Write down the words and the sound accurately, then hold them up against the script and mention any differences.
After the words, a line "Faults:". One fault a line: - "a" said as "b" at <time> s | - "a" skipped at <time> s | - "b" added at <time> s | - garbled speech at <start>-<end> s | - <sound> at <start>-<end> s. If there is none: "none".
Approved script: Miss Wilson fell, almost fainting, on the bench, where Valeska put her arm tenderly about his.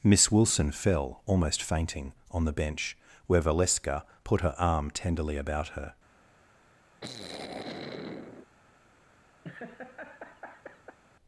Miss Wilson fell, almost fainting, on the bench, where Valeska put her arm tenderly about her.
Faults:
- "his" said as "her" at 5.7 s
- sigh at 7.0-8.5 s
- laugh at 9.4-11.0 s